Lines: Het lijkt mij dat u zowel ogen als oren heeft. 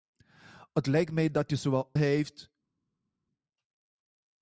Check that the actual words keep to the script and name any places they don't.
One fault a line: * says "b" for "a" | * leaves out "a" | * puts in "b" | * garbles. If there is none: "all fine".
* leaves out "ogen als oren"